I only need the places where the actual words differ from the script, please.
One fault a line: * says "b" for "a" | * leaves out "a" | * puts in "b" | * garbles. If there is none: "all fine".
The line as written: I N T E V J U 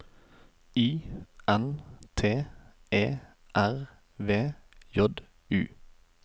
* puts in "R"